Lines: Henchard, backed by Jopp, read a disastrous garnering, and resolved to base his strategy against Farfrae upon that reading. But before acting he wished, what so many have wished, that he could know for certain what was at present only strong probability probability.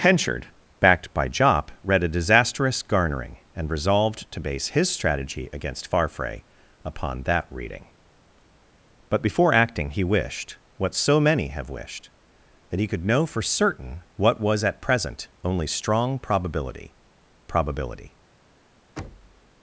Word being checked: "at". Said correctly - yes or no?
yes